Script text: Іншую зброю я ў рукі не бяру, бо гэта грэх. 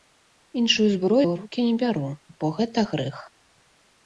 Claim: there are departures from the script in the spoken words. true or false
true